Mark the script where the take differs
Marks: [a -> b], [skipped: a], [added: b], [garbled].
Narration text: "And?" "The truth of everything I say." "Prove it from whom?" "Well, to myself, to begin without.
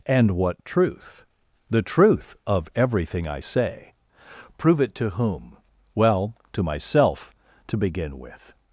"And?" [added: what truth] "The truth of everything I say." "Prove it [from -> to] whom?" "Well, to myself, to begin [without. -> with]